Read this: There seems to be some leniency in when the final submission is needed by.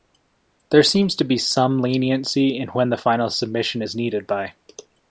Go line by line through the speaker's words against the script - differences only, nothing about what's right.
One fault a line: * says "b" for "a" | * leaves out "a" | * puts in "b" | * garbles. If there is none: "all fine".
all fine